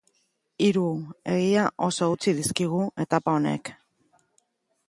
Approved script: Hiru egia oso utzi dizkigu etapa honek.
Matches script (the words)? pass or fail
pass